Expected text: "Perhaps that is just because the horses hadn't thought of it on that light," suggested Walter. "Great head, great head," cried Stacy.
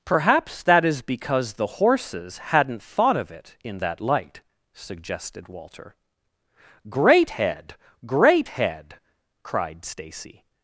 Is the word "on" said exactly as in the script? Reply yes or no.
no